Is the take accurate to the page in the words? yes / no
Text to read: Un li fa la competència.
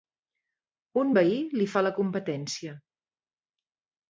no